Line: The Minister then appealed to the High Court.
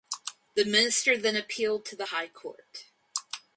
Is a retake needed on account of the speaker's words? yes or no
no